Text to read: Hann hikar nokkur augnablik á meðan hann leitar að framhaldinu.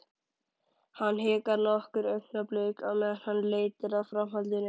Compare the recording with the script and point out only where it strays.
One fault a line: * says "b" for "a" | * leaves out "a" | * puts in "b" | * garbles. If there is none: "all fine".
all fine